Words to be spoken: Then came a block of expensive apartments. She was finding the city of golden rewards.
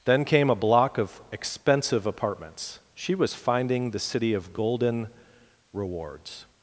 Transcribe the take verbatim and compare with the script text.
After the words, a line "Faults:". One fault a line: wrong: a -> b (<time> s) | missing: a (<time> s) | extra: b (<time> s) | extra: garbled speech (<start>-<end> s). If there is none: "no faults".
Then came a block of expensive apartments. She was finding the city of golden rewards.
Faults:
no faults